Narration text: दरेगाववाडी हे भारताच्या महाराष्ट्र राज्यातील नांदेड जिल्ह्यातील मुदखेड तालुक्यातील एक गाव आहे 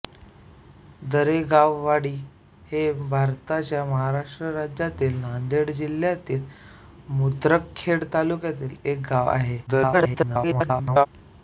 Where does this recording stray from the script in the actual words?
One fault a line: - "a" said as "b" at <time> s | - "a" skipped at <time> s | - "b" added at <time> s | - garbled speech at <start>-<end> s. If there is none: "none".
- garbled speech at 9.7-11.1 s